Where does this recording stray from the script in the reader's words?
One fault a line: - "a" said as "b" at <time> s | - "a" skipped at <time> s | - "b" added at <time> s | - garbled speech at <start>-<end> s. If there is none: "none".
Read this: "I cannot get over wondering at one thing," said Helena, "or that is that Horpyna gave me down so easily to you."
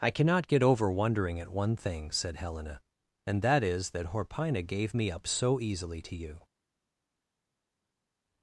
- "or" said as "and" at 3.3 s
- "down" said as "up" at 5.1 s